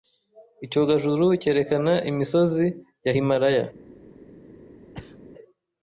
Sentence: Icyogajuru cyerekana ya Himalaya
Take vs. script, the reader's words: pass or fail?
fail